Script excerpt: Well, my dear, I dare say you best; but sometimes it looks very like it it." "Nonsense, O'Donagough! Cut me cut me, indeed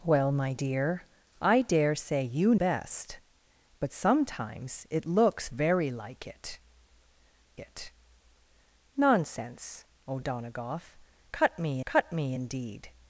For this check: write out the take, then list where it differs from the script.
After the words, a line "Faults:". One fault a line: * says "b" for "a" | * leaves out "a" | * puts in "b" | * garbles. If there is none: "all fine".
Well, my dear, I dare say you best; but sometimes it looks very like it it." "Nonsense, O'Donagough! Cut me cut me, indeed
Faults:
all fine